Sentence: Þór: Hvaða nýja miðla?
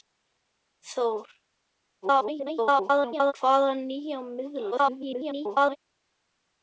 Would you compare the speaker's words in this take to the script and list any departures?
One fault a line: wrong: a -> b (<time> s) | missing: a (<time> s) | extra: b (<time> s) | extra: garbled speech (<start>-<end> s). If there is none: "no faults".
extra: garbled speech (2.0-3.3 s)
extra: garbled speech (4.7-5.8 s)